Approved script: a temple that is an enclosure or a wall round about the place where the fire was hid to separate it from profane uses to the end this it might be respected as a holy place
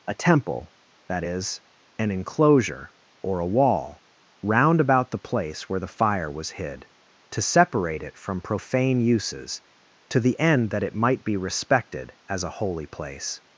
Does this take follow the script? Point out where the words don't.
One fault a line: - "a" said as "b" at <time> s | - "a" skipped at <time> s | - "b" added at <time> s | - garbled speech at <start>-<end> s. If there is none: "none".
- "this" said as "that" at 10.7 s